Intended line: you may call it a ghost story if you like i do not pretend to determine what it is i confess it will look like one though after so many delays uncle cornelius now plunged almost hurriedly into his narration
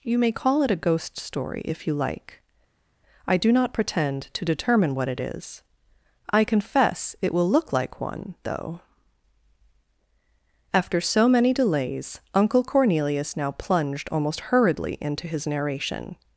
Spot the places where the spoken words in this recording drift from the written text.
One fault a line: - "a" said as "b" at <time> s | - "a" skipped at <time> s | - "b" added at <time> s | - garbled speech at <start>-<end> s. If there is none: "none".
none